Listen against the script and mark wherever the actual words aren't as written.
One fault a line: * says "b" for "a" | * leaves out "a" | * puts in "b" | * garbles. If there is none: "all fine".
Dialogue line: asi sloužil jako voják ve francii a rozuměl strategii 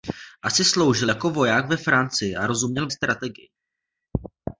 all fine